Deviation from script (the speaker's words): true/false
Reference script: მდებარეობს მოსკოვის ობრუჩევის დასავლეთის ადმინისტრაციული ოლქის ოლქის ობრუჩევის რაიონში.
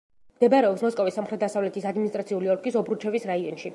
true